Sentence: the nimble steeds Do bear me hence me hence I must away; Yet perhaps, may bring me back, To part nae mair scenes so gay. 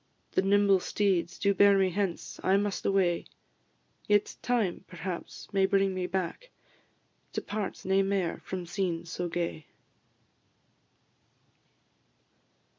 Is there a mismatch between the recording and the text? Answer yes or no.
yes